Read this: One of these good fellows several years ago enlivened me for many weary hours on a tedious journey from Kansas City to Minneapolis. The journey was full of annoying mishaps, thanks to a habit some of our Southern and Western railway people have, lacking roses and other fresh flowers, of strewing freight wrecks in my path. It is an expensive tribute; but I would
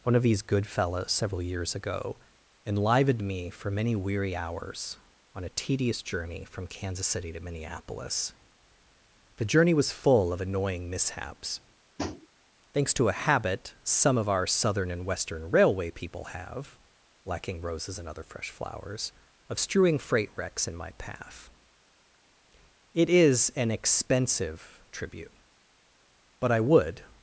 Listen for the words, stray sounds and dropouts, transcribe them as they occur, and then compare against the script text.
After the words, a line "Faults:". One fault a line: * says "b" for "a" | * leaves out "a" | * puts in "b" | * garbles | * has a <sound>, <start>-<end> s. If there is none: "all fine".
One of these good fellows several years ago enlivened me for many weary hours on a tedious journey from Kansas City to Minneapolis. The journey was full of annoying mishaps, thanks to a habit some of our Southern and Western railway people have, lacking roses and other fresh flowers, of strewing freight wrecks in my path. It is an expensive tribute; but I would
Faults:
* has a tap, 12.0-12.3 s